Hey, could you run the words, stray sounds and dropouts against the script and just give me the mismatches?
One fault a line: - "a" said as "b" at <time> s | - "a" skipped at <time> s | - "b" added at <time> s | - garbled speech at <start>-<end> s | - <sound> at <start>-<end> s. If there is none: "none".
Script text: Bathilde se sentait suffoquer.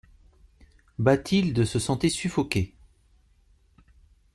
none